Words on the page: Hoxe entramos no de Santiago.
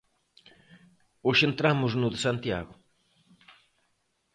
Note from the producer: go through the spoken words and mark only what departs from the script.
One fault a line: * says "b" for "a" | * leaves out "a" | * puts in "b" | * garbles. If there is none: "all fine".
all fine